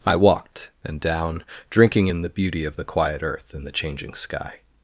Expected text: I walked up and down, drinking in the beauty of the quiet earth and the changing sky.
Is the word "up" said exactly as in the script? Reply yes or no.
no